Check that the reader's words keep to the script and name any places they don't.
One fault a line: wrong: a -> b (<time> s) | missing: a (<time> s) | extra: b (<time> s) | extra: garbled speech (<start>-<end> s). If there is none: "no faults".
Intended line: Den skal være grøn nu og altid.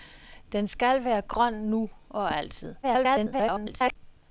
extra: garbled speech (2.8-4.0 s)